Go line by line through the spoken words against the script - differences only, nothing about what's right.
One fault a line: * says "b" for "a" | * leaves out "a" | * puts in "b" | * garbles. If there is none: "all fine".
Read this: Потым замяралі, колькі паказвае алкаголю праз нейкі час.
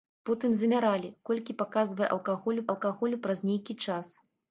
* puts in "алкаголю"